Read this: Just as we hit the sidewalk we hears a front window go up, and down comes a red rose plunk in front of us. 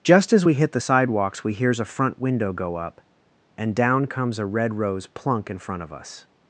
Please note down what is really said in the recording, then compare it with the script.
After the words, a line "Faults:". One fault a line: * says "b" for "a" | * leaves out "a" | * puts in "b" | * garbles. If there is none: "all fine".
Just as we hit the sidewalks we hears a front window go up, and down comes a red rose plunk in front of us.
Faults:
* says "sidewalks" for "sidewalk"